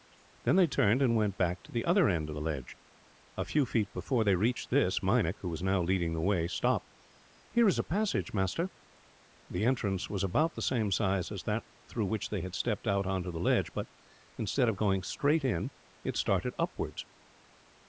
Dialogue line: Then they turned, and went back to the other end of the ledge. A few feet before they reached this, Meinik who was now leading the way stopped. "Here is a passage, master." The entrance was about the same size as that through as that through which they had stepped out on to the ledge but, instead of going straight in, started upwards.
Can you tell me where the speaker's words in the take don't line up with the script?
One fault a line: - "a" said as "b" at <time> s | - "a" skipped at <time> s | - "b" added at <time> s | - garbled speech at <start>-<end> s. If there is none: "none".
- "as that through" skipped at 12.1 s
- "it" added at 16.0 s